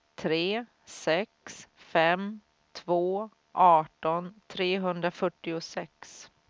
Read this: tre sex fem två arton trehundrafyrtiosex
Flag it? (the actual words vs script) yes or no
no